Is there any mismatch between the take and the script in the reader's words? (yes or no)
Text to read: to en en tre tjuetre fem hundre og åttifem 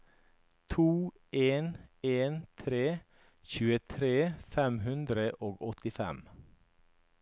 no